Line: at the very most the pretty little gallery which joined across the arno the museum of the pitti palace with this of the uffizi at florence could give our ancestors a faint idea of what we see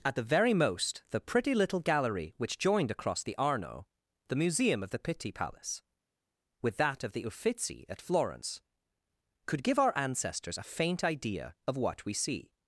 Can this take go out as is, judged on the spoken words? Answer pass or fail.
fail